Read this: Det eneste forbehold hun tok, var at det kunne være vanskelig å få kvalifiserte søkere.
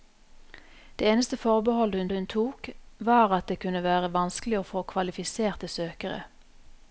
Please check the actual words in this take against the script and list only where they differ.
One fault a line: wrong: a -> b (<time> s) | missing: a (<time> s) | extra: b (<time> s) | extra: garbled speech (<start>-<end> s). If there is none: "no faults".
extra: hun (2.1 s)